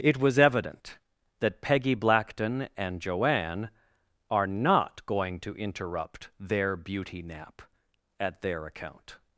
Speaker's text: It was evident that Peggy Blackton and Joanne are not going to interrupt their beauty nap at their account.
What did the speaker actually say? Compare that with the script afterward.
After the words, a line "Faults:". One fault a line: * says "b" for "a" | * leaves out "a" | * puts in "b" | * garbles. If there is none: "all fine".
It was evident that Peggy Blackton and Joanne are not going to interrupt their beauty nap at their account.
Faults:
all fine